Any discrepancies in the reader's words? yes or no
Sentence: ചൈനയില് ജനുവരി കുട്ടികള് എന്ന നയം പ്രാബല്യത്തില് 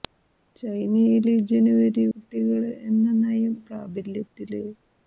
no